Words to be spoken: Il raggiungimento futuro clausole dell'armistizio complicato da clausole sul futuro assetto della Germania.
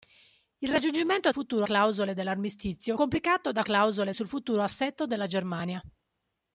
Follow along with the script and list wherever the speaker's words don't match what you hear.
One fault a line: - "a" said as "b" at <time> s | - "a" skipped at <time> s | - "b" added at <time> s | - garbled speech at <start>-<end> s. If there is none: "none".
none